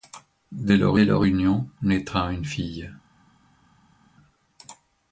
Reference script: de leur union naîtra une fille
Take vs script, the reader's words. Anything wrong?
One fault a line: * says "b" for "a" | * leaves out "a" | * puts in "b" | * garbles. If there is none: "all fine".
* puts in "leur"